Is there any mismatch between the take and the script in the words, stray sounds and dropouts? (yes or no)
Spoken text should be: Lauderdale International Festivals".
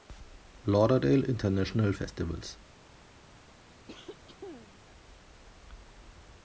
yes